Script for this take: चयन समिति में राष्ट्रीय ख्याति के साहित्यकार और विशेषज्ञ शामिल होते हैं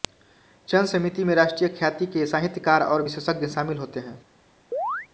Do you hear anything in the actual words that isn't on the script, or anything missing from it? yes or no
no